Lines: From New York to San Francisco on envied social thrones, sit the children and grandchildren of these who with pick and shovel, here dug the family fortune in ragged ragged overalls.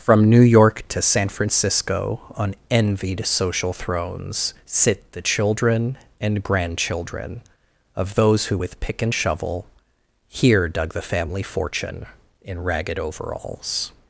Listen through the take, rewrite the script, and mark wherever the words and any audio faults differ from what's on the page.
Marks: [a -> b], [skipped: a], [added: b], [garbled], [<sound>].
From New York to San Francisco on envied social thrones, sit the children and grandchildren of [these -> those] who with pick and shovel, here dug the family fortune in ragged [skipped: ragged] overalls.